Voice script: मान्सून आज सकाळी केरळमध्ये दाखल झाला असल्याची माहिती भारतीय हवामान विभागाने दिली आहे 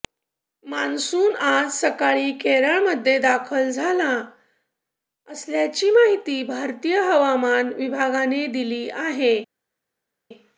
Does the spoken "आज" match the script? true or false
true